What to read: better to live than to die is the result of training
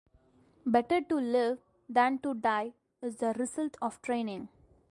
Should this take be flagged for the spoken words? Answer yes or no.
no